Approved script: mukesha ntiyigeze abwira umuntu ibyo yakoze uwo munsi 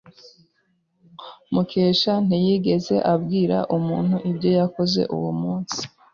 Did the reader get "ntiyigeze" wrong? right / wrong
right